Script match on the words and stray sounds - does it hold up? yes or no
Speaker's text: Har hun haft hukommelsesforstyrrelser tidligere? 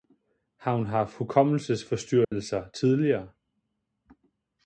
no